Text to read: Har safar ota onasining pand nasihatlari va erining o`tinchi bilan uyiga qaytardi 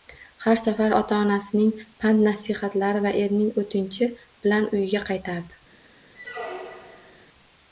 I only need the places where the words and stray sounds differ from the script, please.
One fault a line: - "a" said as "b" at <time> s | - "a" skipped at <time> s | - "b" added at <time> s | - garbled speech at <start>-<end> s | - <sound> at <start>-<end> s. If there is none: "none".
- squeak at 6.1-7.3 s